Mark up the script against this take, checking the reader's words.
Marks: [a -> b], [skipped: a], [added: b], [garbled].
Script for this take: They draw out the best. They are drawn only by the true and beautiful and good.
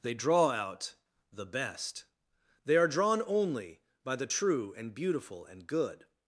They draw out the best. They are drawn only by the true and beautiful and good.